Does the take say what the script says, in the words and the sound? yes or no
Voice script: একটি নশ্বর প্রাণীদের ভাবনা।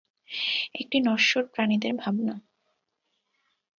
yes